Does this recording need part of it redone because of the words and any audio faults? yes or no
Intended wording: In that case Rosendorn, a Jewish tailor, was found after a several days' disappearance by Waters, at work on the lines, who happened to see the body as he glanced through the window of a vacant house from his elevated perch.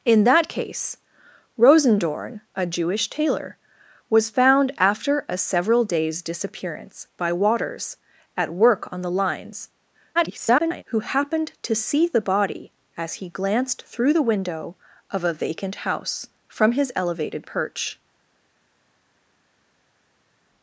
yes